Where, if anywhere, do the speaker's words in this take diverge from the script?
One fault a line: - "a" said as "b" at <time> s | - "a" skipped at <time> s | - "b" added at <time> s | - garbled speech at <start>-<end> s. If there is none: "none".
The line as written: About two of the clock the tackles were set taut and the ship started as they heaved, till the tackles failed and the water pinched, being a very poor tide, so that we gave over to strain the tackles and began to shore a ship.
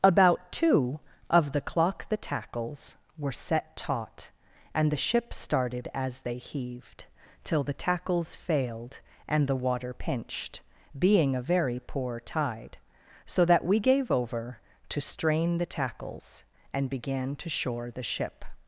- "a" said as "the" at 17.9 s